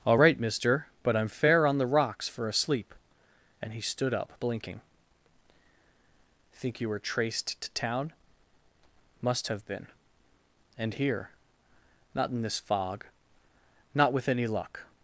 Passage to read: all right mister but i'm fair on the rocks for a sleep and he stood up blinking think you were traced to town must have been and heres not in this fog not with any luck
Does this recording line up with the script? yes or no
no